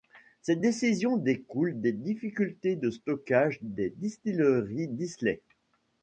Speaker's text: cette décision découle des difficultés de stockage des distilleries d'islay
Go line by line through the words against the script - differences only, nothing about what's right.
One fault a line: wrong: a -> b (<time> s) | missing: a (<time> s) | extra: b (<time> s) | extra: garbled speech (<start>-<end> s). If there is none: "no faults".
no faults